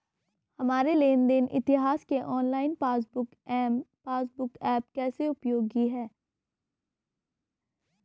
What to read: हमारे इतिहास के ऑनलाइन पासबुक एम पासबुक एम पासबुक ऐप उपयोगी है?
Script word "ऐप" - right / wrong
wrong